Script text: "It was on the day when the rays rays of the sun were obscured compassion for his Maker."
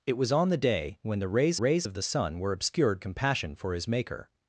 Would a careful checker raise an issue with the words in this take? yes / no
no